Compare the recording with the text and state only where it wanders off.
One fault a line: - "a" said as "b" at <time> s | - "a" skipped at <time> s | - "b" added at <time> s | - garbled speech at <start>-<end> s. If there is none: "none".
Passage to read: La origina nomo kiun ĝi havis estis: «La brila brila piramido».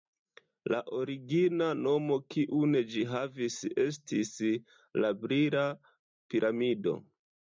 - "brila" skipped at 5.7 s